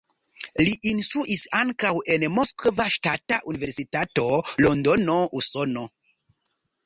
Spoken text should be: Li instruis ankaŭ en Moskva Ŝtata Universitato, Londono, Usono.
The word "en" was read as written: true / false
true